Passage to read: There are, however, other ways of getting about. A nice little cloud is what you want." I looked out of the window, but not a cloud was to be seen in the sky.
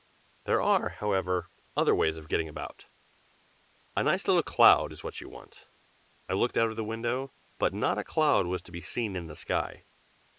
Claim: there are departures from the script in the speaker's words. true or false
false